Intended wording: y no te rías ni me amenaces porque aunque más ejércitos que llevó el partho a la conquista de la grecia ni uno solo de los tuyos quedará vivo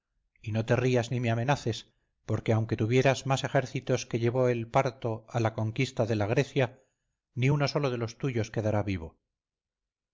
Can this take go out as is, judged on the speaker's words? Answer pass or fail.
fail